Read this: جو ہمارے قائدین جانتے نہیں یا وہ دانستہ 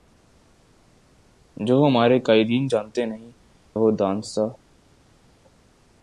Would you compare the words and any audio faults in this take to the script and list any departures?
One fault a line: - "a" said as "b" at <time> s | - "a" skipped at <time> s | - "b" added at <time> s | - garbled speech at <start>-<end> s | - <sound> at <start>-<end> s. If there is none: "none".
- "یا" skipped at 3.3 s